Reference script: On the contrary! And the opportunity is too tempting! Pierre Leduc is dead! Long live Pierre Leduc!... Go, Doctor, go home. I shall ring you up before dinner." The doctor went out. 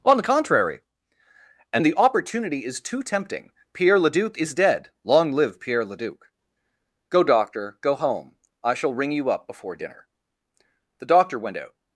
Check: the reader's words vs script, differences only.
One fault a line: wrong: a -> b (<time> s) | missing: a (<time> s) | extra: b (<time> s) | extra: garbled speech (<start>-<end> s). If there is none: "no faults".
no faults